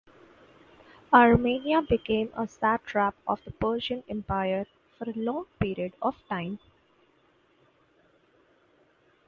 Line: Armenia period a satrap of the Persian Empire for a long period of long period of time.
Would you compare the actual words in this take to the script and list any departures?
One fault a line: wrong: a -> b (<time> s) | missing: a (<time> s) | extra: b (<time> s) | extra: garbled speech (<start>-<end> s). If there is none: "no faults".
wrong: period -> became (1.8 s)
missing: long period of (6.2 s)